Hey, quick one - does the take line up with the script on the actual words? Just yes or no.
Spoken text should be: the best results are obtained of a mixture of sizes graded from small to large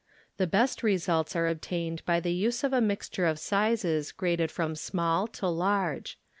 no